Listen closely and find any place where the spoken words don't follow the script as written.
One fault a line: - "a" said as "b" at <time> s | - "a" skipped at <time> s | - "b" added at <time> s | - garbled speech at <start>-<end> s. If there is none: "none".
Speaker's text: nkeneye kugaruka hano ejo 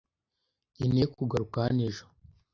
none